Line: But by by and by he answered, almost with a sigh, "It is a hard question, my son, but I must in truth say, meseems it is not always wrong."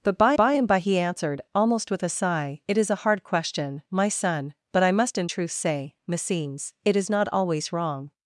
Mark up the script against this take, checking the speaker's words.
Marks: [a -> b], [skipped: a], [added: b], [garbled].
But by by and by he answered, almost with a sigh, "It is a hard question, my son, but I must in truth say, meseems it is not always wrong."